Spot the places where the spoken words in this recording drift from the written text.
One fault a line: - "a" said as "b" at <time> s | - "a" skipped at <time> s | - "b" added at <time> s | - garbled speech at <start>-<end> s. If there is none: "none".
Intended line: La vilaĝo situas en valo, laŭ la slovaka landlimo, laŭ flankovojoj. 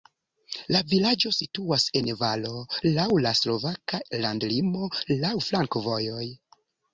none